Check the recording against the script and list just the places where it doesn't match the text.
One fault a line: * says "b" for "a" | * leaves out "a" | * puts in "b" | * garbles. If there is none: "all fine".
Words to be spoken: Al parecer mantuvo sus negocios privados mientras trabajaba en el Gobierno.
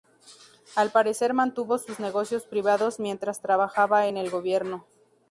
all fine